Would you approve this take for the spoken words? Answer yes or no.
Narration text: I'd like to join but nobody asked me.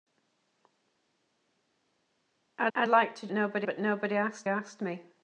no